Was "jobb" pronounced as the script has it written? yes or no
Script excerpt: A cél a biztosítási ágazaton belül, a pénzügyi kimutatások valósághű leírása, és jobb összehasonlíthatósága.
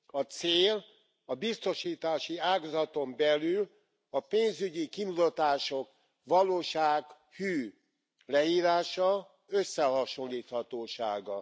no